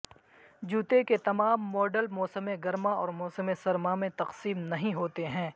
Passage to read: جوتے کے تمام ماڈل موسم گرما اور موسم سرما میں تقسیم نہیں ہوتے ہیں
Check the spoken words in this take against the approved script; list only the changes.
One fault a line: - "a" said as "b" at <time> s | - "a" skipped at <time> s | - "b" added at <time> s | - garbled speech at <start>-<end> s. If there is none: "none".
none